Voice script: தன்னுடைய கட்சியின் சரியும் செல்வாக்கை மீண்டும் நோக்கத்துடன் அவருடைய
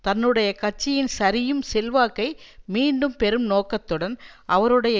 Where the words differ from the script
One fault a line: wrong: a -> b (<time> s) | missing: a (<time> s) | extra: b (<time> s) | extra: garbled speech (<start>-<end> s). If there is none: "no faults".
extra: பெறும் (3.1 s)